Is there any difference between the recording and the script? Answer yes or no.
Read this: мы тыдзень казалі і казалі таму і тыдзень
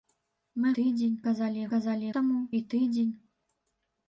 no